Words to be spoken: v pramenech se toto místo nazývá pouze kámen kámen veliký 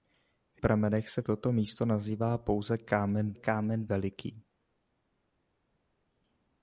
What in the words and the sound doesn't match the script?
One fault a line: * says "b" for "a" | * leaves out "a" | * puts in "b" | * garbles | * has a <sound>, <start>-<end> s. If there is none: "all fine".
all fine